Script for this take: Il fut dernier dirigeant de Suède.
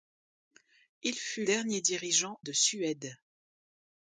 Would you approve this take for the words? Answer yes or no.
yes